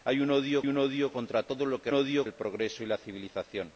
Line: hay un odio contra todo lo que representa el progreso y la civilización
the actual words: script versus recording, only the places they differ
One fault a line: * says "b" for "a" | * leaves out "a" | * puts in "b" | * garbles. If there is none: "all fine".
* puts in "un odio"
* says "odio" for "representa"